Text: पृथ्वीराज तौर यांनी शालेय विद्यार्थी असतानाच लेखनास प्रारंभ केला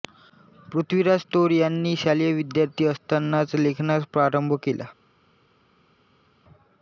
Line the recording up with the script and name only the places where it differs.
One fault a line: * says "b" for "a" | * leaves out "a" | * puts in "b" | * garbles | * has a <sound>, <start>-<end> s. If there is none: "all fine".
all fine